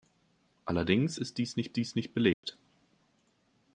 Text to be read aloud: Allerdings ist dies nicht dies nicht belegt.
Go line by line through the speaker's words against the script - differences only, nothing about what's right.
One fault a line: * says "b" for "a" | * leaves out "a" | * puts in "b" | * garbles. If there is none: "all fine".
all fine